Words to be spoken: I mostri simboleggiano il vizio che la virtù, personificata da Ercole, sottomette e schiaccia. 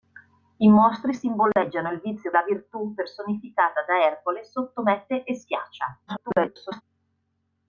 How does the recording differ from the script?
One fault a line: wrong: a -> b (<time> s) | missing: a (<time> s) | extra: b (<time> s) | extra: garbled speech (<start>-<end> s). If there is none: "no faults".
missing: che (2.3 s)
extra: garbled speech (6.1-6.8 s)